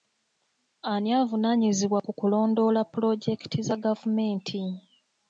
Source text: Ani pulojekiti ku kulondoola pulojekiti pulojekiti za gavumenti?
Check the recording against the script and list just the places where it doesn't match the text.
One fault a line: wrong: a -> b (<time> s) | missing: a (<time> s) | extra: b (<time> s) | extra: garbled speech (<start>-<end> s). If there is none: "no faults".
wrong: pulojekiti -> avunaanyizibwa (1.2 s)
missing: pulojekiti (3.6 s)